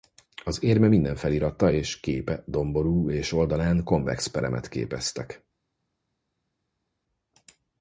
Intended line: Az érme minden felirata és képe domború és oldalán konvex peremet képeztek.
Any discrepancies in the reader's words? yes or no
no